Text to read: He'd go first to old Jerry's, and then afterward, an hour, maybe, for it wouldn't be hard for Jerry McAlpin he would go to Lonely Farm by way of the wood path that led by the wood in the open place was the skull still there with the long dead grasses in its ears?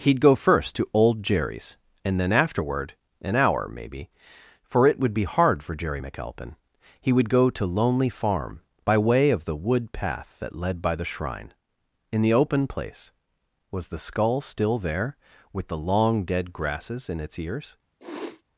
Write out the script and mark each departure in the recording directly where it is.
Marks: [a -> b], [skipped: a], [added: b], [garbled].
He'd go first to old Jerry's, and then afterward, an hour, maybe, for it [wouldn't -> would] be hard for Jerry McAlpin he would go to Lonely Farm by way of the wood path that led by the [wood -> shrine] in the open place was the skull still there with the long dead grasses in its ears?